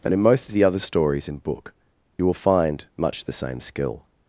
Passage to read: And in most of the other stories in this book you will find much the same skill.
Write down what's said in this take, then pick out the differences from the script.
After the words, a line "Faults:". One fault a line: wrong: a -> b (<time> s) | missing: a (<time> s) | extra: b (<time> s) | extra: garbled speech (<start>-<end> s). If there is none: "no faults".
And in most of the other stories in book you will find much the same skill.
Faults:
missing: this (1.4 s)